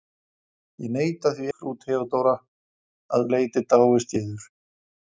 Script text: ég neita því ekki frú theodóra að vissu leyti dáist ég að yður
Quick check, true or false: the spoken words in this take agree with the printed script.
false